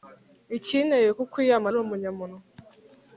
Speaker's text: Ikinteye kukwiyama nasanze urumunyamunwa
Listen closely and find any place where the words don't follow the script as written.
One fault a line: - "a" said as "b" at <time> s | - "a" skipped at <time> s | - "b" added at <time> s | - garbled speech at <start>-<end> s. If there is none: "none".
- "nasanze" skipped at 1.7 s